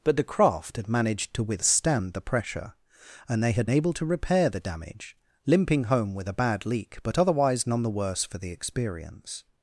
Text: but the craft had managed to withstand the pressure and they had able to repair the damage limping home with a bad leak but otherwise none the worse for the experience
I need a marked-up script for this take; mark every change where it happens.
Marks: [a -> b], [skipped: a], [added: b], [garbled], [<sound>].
but the craft had managed to withstand the pressure and they had able to repair the damage limping home with a bad leak but otherwise none the worse for the experience